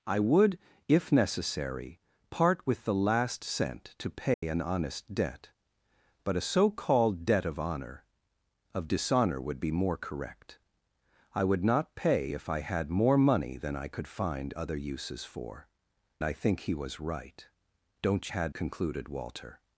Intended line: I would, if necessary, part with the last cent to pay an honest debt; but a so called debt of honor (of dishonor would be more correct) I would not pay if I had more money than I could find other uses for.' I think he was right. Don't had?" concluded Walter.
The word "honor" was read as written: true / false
true